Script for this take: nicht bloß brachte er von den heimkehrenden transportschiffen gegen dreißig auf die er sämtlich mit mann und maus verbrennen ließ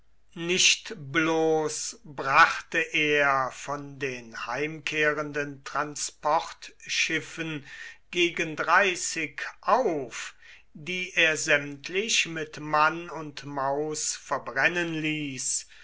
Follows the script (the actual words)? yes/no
yes